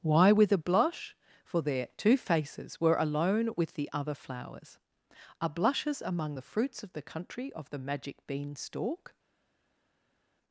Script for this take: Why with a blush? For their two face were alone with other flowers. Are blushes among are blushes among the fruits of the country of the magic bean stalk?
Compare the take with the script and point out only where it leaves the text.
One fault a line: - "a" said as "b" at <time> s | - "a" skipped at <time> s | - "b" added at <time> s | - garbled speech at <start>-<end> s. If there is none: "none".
- "face" said as "faces" at 2.2 s
- "the" added at 3.7 s
- "are blushes among" skipped at 6.3 s